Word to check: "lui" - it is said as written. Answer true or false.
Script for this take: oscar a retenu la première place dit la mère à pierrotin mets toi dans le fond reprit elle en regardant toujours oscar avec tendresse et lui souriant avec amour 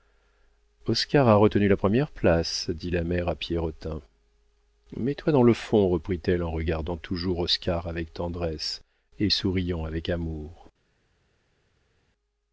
false